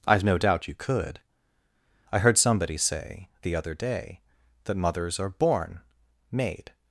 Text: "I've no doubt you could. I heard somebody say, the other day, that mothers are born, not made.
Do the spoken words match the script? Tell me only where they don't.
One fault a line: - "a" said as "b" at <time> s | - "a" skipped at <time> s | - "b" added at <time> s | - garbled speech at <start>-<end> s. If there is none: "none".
- "not" skipped at 5.8 s